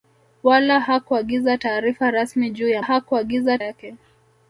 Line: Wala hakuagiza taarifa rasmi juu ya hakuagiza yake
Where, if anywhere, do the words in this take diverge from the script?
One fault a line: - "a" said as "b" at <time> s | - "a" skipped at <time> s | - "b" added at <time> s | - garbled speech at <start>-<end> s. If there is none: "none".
none